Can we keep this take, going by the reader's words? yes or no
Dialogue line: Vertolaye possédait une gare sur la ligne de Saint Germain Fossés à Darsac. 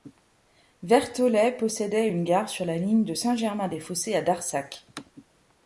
no